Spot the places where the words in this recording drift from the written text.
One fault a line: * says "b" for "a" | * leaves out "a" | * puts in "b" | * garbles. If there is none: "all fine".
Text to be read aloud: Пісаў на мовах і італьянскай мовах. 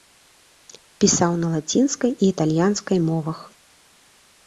* says "лацінскай" for "мовах"